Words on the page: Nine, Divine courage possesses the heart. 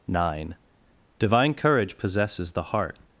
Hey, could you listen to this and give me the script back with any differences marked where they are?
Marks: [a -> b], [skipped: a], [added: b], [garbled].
Nine, Divine courage possesses the heart.